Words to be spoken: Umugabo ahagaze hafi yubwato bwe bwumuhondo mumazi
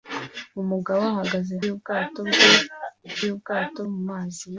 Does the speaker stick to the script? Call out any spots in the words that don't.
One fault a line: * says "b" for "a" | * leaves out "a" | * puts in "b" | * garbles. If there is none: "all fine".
* leaves out "hafi"
* says "yubwato" for "bwumuhondo"